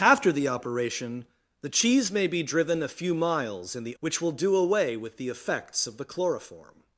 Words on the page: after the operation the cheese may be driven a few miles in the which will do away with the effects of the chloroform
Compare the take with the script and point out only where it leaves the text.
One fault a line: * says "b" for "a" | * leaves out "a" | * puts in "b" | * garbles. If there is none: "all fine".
all fine